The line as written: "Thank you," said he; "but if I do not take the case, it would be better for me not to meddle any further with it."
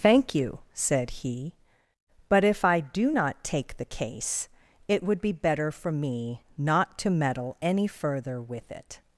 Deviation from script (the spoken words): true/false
false